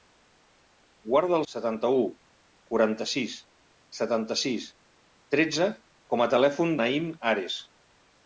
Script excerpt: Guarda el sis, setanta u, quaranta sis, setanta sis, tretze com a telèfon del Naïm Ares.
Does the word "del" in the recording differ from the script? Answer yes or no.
yes